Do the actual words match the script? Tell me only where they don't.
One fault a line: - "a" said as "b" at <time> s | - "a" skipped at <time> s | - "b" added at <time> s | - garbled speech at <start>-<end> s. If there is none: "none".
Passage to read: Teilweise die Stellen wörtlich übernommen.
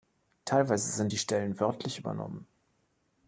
- "sind" added at 0.9 s